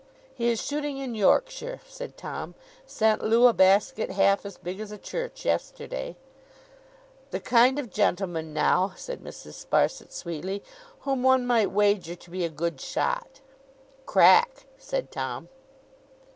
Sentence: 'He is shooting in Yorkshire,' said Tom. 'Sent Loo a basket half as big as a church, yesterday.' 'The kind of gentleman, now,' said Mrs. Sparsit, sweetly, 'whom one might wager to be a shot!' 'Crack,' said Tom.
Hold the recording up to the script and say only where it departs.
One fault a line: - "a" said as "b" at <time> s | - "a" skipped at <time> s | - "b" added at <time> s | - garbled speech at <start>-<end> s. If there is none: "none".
- "good" added at 12.5 s